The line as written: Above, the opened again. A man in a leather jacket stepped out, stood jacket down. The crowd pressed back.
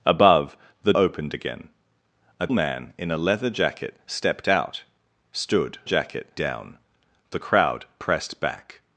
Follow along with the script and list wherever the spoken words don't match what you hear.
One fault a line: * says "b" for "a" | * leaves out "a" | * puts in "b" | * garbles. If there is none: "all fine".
all fine